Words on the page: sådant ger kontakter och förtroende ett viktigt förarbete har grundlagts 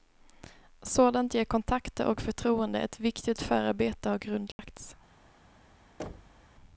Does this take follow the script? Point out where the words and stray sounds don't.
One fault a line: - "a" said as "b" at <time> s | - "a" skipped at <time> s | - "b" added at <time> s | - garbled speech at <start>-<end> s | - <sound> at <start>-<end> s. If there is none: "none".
- dropout at 4.5-4.6 s
- thud at 6.0-6.5 s